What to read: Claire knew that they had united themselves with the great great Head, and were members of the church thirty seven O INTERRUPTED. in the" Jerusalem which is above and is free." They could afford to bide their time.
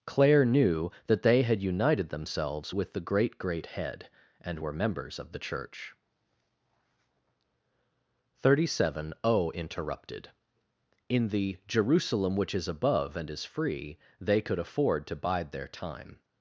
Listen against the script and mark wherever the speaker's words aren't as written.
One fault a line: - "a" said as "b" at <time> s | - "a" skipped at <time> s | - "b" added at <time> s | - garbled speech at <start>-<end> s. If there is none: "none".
none